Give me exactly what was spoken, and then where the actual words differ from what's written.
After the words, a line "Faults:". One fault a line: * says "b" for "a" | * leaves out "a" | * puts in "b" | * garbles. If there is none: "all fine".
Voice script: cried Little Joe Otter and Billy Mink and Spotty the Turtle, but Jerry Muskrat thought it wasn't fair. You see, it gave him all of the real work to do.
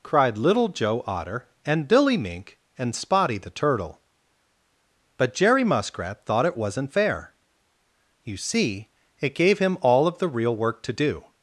cried Little Joe Otter and Billy Mink and Spotty the Turtle, but Jerry Muskrat thought it wasn't fair. You see, it gave him all of the real work to do.
Faults:
all fine